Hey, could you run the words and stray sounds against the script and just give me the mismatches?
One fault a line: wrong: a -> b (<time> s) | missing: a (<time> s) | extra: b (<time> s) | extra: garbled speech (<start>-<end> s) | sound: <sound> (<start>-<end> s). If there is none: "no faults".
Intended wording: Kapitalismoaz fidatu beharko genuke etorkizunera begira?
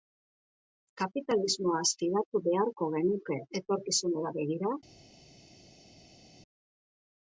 no faults